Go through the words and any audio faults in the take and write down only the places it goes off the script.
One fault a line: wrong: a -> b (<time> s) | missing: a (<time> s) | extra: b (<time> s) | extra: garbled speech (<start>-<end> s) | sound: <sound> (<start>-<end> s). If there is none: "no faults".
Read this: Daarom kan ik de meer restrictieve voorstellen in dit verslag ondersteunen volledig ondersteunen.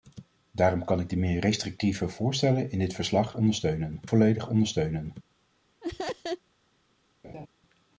sound: laugh (5.8-6.4 s)
sound: laugh (7.2-7.5 s)